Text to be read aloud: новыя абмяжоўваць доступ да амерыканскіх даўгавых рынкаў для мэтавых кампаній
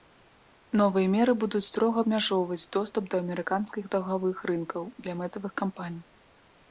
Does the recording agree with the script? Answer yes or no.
no